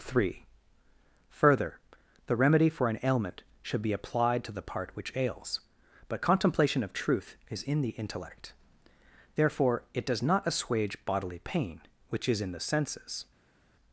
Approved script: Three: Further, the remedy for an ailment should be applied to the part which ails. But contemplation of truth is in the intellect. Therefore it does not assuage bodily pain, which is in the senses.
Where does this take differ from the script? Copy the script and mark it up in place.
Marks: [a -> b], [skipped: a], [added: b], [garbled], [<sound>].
Three: Further, the remedy for an ailment should be applied to the part which ails. But contemplation of truth is in the intellect. Therefore it does not assuage bodily pain, which is in the senses.